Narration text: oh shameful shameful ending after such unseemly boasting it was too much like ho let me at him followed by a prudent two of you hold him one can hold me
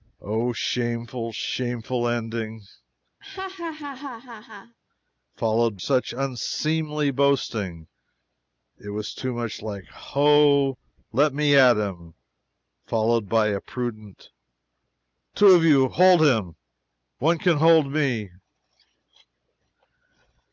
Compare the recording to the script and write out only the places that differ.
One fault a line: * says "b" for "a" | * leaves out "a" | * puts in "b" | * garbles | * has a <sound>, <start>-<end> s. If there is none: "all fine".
* has a laugh, 3.2-4.8 s
* says "followed" for "after"